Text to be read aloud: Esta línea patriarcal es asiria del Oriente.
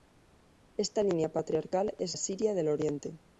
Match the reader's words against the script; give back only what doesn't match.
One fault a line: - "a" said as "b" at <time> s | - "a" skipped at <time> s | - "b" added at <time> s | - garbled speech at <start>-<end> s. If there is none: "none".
none